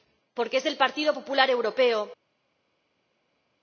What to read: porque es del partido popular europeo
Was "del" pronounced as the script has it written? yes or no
yes